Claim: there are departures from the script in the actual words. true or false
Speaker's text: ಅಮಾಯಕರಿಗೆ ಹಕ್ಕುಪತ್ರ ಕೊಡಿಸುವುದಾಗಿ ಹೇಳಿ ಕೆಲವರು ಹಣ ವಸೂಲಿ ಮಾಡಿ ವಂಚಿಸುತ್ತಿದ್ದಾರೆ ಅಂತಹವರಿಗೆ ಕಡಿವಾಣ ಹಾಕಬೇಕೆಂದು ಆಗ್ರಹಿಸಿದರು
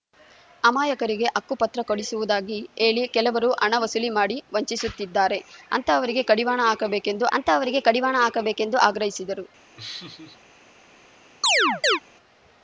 true